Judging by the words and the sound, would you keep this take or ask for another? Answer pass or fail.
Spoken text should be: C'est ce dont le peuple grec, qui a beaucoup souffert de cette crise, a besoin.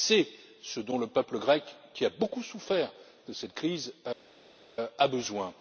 pass